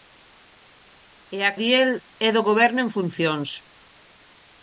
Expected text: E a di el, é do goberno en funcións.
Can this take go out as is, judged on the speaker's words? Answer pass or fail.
pass